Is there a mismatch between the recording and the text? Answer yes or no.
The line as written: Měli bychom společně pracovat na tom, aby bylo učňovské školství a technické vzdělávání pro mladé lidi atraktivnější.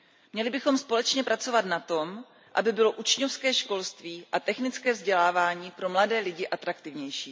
no